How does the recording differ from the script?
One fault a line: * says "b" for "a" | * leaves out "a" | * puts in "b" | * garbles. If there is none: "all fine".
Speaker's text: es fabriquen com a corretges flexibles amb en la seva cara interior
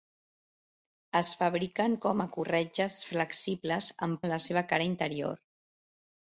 all fine